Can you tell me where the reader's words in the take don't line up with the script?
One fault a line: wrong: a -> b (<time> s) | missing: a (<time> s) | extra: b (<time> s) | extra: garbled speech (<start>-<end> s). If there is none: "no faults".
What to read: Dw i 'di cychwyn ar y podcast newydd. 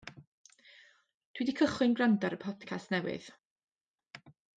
extra: gwrando (2.0 s)